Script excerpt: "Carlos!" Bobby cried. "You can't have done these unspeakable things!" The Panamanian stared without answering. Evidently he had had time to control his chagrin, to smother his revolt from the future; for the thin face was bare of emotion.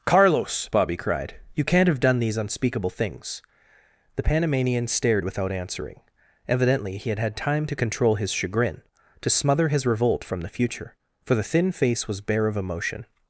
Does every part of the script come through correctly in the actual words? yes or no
yes